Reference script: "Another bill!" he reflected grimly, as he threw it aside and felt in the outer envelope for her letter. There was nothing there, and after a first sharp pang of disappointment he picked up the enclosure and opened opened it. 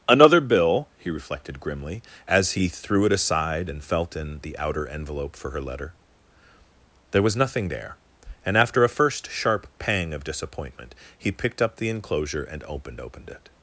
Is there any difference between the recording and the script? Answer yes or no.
no